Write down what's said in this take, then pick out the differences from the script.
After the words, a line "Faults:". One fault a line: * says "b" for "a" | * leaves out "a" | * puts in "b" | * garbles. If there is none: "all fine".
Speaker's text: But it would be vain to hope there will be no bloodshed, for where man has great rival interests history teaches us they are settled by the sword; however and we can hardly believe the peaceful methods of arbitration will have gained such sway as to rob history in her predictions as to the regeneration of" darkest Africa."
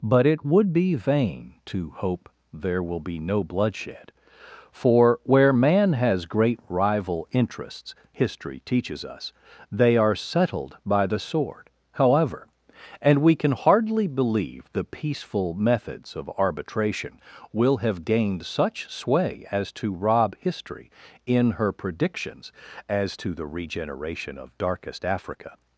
But it would be vain to hope there will be no bloodshed, for where man has great rival interests history teaches us they are settled by the sword; however and we can hardly believe the peaceful methods of arbitration will have gained such sway as to rob history in her predictions as to the regeneration of" darkest Africa."
Faults:
all fine